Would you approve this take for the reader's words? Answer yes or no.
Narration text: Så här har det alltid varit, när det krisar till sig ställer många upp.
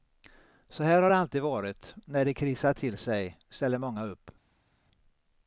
yes